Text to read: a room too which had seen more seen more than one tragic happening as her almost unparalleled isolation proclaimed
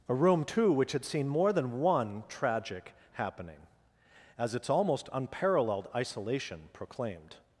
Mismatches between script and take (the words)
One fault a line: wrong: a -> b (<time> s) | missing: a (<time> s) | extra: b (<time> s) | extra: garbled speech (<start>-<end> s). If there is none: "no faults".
missing: seen more (1.5 s)
wrong: her -> its (4.5 s)